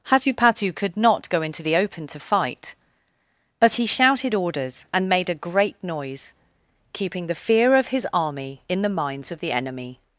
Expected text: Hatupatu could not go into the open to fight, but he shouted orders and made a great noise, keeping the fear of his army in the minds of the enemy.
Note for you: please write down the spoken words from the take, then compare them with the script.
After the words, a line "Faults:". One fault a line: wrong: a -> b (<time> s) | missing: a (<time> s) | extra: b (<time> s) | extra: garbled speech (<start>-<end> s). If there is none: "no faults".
Hatupatu could not go into the open to fight, but he shouted orders and made a great noise, keeping the fear of his army in the minds of the enemy.
Faults:
no faults